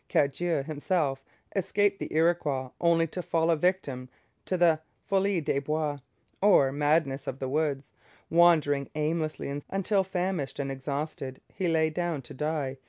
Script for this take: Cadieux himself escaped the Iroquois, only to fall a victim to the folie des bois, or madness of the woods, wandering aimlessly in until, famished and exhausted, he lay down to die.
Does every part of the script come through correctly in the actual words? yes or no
yes